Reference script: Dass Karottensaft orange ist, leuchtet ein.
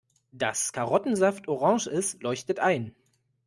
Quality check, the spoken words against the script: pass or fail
pass